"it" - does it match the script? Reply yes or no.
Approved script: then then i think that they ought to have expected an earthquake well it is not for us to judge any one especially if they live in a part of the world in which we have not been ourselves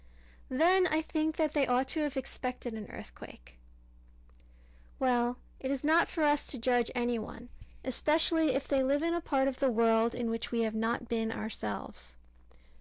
yes